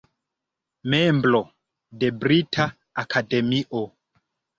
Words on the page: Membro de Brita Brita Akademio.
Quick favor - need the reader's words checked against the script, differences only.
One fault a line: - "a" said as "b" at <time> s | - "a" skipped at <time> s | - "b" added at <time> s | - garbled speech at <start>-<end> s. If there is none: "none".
- "Brita" skipped at 2.7 s